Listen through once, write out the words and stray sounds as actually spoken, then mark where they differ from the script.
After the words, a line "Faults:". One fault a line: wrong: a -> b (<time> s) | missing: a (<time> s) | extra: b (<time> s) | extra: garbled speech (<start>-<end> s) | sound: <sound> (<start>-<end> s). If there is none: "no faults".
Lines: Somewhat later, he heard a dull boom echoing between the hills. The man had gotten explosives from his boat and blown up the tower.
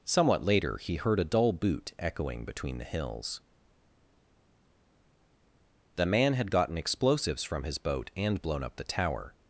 Somewhat later, he heard a dull boot echoing between the hills. The man had gotten explosives from his boat and blown up the tower.
Faults:
wrong: boom -> boot (1.5 s)